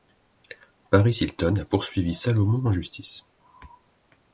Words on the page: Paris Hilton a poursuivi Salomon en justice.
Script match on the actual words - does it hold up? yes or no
yes